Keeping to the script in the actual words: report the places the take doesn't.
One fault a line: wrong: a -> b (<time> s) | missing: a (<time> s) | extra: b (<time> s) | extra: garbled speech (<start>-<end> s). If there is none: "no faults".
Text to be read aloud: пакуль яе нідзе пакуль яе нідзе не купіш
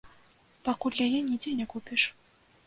missing: пакуль яе нідзе (1.5 s)